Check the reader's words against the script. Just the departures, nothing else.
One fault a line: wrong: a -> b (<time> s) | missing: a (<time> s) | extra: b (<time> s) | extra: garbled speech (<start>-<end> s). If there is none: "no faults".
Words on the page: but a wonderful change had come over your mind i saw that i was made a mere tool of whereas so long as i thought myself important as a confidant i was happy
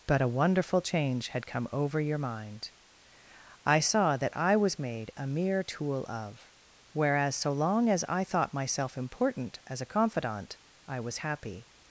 no faults